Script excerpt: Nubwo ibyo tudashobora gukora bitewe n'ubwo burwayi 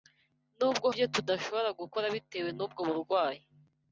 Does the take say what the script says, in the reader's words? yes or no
yes